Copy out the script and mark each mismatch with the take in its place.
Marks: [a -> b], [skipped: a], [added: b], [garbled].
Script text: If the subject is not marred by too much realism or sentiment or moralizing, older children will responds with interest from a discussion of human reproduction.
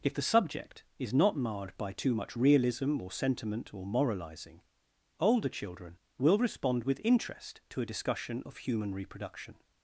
If the subject is not marred by too much realism or sentiment or moralizing, older children will [responds -> respond] with interest [from -> to] a discussion of human reproduction.